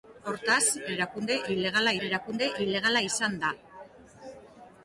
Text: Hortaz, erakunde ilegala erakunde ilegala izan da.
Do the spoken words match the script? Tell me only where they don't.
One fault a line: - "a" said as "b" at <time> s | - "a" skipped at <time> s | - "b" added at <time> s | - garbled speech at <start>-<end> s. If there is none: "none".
none